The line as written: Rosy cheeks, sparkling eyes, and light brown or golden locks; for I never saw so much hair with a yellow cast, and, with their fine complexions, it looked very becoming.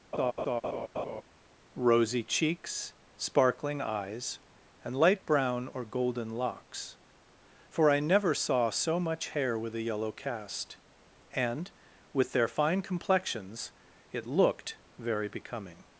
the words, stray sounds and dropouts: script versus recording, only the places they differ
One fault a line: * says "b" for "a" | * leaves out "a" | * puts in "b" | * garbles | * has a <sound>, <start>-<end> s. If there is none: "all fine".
* has a laugh, 0.1-1.2 s